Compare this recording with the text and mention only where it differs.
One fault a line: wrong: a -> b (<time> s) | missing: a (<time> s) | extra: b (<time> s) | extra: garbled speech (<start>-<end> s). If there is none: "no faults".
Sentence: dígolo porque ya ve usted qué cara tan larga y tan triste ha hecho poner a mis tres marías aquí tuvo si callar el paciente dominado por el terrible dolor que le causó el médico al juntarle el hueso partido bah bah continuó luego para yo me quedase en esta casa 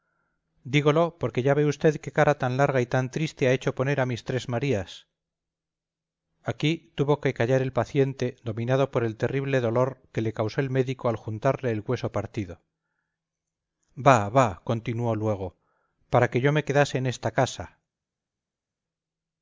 wrong: si -> que (7.2 s)
extra: que (16.3 s)